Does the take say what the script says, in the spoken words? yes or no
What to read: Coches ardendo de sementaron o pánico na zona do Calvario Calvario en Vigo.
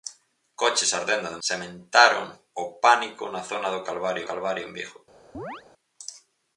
yes